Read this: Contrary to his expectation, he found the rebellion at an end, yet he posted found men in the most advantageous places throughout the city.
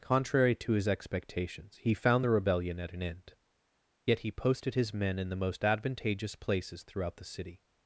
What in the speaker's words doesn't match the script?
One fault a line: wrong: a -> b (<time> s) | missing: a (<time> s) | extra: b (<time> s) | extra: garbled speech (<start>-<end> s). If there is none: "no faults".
wrong: expectation -> expectations (0.9 s)
wrong: found -> his (4.7 s)